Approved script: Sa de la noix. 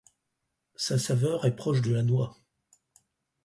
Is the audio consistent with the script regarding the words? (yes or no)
no